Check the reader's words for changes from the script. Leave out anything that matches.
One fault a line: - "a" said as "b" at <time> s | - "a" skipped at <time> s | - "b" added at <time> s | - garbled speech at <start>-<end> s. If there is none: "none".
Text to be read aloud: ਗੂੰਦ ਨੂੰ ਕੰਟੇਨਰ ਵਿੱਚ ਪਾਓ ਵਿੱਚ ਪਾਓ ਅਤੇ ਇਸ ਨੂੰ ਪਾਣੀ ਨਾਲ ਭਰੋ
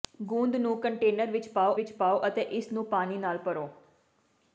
none